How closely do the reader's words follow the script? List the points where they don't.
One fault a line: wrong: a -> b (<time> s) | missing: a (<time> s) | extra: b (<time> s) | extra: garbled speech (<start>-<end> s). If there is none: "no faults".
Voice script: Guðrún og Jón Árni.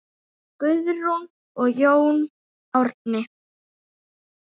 no faults